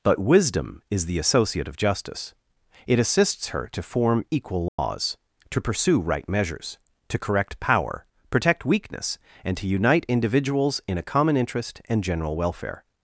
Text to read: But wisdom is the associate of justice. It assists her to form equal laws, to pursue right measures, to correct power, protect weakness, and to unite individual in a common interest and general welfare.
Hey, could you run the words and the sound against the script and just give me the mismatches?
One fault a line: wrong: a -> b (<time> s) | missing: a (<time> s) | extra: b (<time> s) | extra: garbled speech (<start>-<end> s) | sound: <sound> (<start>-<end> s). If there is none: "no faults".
sound: dropout (4.7-4.8 s)
wrong: individual -> individuals (10.1 s)